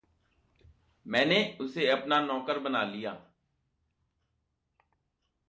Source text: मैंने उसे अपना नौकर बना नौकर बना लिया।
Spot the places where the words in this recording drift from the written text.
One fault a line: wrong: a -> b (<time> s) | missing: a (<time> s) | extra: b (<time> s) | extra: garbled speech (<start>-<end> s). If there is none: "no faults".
missing: नौकर बना (2.8 s)